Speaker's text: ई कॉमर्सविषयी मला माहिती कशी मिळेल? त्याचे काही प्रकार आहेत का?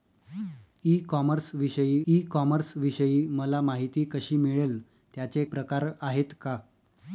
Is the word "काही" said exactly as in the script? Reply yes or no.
no